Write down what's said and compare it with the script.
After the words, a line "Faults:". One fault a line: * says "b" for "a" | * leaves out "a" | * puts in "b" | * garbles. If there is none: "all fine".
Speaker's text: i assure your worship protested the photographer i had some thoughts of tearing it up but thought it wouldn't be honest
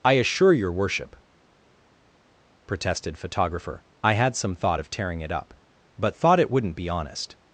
i assure your worship protested photographer i had some thought of tearing it up but thought it wouldn't be honest
Faults:
* leaves out "the"
* says "thought" for "thoughts"